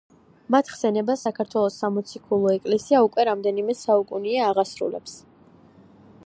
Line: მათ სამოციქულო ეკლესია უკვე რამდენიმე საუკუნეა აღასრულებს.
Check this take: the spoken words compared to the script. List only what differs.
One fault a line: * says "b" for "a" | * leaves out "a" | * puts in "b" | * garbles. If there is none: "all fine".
* puts in "ხსენებას საქართველოს"